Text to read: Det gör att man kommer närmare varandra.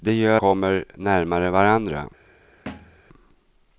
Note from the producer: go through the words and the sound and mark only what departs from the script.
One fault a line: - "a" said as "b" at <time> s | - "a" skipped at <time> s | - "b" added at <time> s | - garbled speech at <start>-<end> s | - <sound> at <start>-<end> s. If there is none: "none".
- "att man" skipped at 0.4 s
- thud at 2.7-3.0 s